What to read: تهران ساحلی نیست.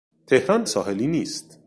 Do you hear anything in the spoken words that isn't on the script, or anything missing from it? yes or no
no